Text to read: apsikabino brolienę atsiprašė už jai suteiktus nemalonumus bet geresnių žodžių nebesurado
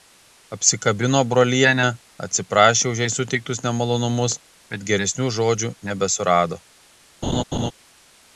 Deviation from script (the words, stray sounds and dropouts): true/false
true